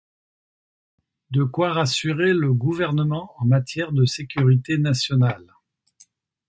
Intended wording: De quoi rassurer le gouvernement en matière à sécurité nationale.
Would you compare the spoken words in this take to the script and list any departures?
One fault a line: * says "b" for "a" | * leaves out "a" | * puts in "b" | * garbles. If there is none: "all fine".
* says "de" for "à"